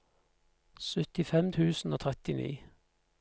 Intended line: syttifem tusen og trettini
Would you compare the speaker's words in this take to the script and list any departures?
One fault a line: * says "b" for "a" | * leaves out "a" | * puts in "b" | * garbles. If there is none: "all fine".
all fine